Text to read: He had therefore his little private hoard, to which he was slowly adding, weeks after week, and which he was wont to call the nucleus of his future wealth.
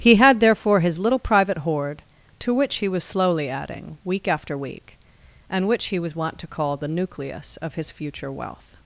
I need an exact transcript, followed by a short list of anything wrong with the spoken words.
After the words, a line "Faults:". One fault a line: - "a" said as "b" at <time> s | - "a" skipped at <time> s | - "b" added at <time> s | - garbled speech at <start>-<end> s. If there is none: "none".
He had therefore his little private hoard, to which he was slowly adding, week after week, and which he was wont to call the nucleus of his future wealth.
Faults:
- "weeks" said as "week" at 4.0 s